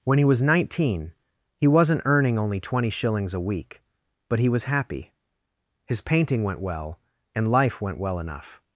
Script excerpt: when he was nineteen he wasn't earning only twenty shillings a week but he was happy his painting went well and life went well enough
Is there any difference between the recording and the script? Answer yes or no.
no